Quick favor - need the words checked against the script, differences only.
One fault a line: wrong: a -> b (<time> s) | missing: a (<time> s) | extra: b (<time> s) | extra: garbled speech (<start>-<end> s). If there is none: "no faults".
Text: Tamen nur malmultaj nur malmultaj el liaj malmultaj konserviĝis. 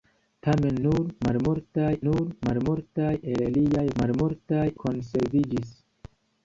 no faults